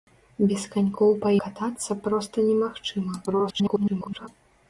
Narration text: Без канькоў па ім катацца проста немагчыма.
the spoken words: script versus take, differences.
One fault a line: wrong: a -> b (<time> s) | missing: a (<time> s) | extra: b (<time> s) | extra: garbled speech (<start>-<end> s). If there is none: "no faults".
missing: ім (1.3 s)
extra: garbled speech (3.3-4.3 s)